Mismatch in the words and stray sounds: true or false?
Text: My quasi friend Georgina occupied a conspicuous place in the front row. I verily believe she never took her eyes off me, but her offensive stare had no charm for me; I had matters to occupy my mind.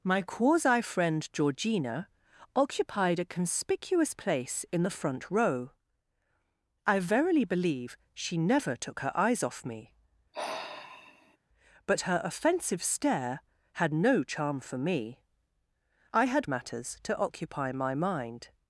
true